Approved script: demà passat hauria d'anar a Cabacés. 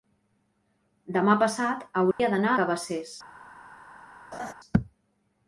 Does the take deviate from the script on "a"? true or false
true